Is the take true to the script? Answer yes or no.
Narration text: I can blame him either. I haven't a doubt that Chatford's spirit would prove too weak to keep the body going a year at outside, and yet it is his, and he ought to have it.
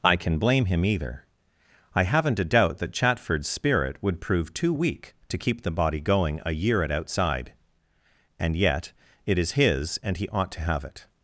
yes